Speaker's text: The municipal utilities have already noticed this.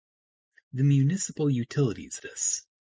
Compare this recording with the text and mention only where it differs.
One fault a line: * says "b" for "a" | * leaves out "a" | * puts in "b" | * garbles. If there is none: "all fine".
* leaves out "have already noticed"